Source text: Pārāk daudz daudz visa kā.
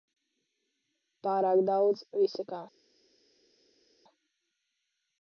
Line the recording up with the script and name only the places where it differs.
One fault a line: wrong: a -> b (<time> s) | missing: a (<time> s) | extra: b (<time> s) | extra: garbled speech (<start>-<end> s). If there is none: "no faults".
missing: daudz (2.0 s)